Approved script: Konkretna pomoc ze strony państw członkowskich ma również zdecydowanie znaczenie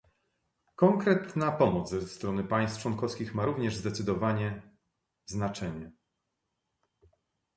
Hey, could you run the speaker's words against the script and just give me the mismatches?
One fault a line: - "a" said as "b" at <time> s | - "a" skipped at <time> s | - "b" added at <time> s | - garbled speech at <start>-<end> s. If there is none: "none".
none